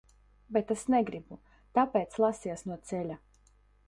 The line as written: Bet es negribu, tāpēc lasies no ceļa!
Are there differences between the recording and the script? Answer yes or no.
no